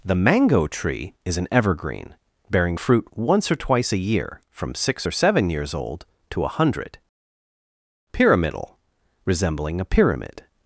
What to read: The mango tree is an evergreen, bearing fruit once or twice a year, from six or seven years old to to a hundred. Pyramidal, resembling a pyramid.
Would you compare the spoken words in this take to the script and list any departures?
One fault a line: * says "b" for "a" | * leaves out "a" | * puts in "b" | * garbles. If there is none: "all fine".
* leaves out "to"